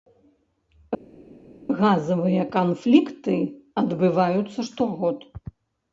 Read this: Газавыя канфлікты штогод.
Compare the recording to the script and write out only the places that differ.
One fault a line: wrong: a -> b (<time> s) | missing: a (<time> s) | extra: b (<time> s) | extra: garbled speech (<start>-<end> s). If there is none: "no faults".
extra: адбываюцца (3.8 s)